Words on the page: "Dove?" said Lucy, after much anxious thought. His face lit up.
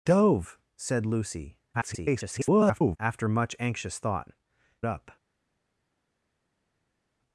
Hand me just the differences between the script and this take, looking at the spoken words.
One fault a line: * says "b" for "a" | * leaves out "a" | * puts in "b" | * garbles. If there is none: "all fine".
* garbles
* leaves out "His face lit"